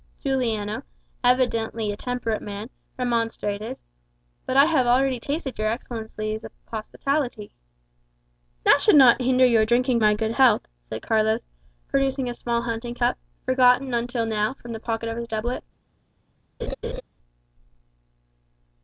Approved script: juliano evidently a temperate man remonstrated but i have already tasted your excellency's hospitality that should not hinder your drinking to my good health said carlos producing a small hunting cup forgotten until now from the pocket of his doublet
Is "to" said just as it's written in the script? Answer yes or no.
no